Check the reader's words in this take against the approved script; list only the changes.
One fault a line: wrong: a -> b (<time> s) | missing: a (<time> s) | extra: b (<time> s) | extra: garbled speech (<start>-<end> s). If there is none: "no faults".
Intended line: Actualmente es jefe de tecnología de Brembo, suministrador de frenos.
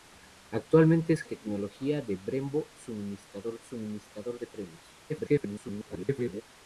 missing: jefe de (1.2 s)
extra: suministrador (3.6 s)
extra: garbled speech (5.1-6.4 s)